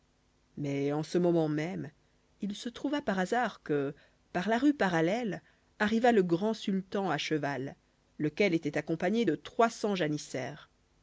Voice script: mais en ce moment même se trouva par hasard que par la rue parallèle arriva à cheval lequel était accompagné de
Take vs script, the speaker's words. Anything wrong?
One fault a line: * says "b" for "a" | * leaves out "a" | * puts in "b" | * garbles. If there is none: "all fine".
* puts in "il"
* puts in "le grand sultan"